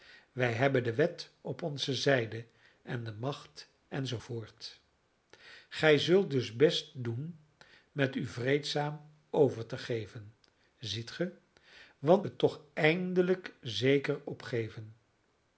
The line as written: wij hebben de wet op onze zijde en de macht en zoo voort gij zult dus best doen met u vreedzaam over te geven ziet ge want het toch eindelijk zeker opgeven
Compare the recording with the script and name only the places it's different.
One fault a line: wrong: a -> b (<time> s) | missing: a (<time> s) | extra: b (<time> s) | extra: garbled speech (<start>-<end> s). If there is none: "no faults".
no faults